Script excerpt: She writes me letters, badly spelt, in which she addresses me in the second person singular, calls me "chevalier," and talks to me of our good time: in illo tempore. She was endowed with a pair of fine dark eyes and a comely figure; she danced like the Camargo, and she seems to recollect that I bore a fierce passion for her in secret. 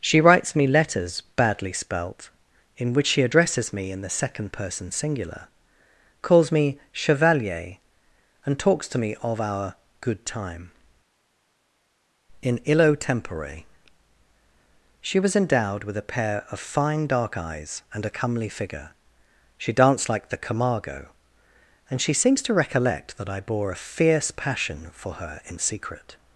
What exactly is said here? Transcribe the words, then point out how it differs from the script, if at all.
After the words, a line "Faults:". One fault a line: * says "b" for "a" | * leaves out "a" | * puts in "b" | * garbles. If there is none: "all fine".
She writes me letters, badly spelt, in which she addresses me in the second person singular, calls me "chevalier," and talks to me of our good time: in illo tempore. She was endowed with a pair of fine dark eyes and a comely figure; she danced like the Camargo, and she seems to recollect that I bore a fierce passion for her in secret.
Faults:
all fine